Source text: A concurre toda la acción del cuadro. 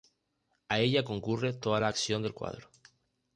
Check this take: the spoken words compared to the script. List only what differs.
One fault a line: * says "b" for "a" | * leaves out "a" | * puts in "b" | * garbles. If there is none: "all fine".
* puts in "ella"